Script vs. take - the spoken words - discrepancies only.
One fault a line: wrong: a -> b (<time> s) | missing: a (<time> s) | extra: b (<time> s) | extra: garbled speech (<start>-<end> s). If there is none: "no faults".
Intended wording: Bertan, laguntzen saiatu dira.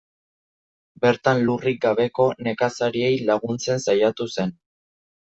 extra: lurrik gabeko nekazariei (1.5 s)
wrong: dira -> zen (4.4 s)